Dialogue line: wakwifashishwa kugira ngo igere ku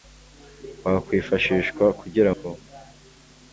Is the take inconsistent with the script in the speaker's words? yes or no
yes